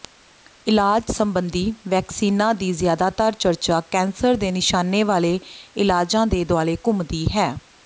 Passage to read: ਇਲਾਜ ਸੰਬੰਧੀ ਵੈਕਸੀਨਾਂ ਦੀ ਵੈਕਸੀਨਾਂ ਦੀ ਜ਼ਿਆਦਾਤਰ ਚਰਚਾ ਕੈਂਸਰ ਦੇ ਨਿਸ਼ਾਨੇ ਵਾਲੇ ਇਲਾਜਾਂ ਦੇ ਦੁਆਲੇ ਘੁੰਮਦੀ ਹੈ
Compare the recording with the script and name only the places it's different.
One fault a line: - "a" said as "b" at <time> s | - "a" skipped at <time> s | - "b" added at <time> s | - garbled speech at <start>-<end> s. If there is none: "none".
- "ਵੈਕਸੀਨਾਂ ਦੀ" skipped at 2.7 s